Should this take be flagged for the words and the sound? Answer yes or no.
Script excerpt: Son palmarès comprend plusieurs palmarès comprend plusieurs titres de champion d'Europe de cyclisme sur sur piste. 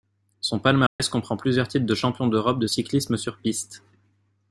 yes